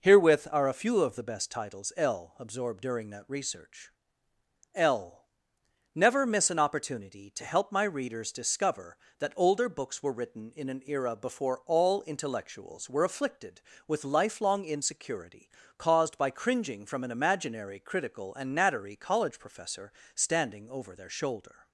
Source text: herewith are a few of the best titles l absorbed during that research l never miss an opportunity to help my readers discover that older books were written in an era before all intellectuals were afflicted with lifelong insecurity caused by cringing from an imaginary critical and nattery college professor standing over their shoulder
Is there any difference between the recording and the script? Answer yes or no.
no